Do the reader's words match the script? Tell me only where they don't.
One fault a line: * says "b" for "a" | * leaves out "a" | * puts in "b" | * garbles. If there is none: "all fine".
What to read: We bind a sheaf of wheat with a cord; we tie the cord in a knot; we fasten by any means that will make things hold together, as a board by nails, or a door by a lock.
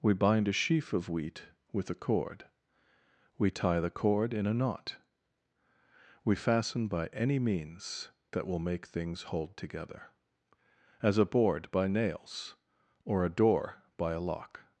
all fine